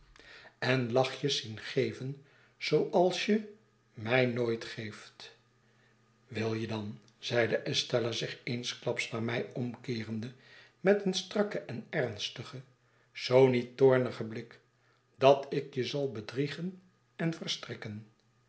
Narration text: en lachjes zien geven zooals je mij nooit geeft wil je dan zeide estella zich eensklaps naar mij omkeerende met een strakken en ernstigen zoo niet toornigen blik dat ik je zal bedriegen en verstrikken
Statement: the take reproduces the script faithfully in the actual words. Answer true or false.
true